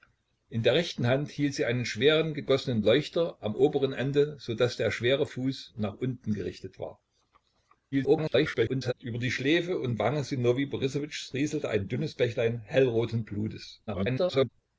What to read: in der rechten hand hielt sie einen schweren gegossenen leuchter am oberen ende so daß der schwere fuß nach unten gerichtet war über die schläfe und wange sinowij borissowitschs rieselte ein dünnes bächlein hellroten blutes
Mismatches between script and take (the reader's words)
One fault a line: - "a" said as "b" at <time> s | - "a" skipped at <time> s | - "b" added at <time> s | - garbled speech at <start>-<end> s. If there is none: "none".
- garbled speech at 7.9-8.9 s
- garbled speech at 13.9-14.5 s